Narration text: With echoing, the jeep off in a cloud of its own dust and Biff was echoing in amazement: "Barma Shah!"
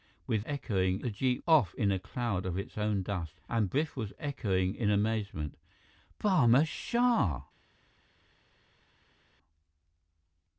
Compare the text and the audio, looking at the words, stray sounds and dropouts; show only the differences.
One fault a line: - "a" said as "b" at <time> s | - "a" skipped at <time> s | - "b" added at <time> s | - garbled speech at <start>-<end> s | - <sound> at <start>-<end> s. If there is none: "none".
none